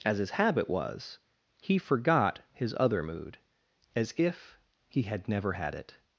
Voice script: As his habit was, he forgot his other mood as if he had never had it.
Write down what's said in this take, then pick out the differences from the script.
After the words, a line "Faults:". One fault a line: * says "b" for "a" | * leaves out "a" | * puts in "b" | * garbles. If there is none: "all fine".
As his habit was, he forgot his other mood as if he had never had it.
Faults:
all fine